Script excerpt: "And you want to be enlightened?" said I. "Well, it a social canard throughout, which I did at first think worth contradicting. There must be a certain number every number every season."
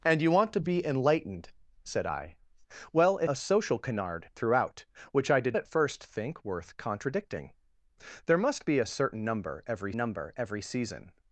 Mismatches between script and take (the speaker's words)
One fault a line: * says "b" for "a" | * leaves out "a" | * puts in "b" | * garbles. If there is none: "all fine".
all fine